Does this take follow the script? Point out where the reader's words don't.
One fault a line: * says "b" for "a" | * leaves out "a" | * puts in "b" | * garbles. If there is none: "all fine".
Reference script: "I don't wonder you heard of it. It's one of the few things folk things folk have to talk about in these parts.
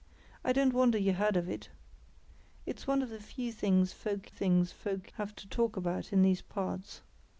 all fine